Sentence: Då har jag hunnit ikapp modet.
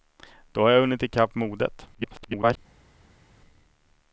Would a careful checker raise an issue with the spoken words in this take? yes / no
yes